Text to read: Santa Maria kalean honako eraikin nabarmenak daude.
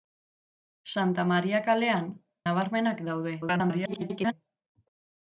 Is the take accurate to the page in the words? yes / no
no